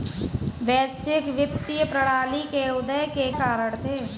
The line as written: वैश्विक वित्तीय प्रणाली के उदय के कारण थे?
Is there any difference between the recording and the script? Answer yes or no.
no